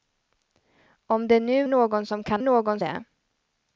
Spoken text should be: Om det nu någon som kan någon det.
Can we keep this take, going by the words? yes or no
yes